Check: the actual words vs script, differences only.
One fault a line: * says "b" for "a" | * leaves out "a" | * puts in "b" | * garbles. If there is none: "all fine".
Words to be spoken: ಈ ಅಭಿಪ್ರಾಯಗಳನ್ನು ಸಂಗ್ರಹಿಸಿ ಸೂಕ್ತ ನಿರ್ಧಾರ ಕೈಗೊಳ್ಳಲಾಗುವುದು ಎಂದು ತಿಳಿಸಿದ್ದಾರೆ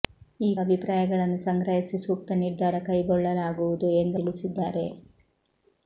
all fine